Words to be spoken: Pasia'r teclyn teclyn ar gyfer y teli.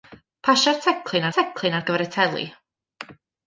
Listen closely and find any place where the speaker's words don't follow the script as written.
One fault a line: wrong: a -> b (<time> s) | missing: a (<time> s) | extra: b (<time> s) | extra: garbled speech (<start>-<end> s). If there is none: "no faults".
no faults